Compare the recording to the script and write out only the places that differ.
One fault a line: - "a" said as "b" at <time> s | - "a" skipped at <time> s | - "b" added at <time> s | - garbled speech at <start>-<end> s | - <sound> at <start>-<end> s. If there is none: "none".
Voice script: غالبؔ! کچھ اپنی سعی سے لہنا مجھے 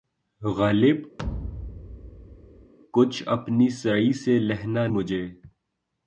- thud at 1.2-2.7 s